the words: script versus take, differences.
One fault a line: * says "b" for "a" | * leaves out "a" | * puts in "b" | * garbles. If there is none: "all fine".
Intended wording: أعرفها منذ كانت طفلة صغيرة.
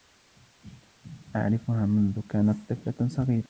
all fine